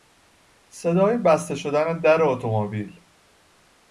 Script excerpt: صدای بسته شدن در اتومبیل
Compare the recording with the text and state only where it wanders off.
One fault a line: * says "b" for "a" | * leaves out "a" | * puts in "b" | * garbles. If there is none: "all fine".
all fine